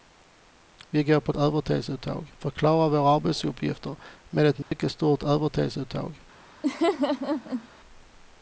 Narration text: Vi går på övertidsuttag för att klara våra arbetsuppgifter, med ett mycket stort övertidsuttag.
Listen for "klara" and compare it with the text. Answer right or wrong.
right